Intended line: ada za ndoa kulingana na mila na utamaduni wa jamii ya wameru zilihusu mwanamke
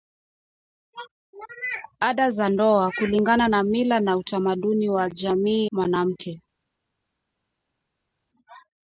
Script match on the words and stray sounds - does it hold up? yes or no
no